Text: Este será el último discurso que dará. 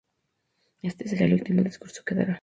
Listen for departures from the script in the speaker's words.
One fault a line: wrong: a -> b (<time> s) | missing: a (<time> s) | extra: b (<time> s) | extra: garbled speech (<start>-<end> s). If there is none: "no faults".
no faults